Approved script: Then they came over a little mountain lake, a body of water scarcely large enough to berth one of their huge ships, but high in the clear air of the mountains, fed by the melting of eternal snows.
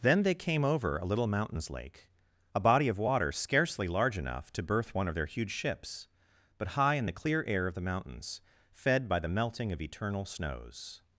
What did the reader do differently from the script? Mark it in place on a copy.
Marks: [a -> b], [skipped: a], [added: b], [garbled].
Then they came over a little [mountain -> mountains] lake, a body of water scarcely large enough to berth one of their huge ships, but high in the clear air of the mountains, fed by the melting of eternal snows.